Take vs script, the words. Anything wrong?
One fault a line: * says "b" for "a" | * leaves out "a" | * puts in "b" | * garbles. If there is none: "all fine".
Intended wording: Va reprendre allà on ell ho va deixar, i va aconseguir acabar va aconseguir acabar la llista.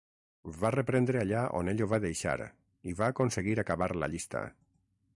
* leaves out "va aconseguir acabar"